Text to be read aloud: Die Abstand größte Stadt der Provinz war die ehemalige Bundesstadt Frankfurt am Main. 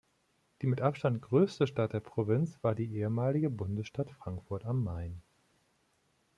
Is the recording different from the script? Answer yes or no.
yes